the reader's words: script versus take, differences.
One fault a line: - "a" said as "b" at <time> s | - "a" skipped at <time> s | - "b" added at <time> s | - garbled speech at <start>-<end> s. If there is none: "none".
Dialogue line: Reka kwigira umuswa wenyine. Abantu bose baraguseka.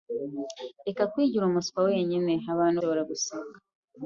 - "bose" skipped at 2.8 s